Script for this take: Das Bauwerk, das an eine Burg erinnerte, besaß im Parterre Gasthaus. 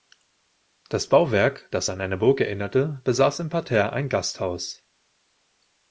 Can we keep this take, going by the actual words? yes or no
no